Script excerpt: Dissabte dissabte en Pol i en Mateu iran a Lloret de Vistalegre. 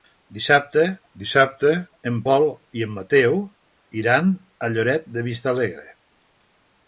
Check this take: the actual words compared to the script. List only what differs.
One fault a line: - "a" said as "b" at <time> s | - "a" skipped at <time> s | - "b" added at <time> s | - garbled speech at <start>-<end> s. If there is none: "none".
none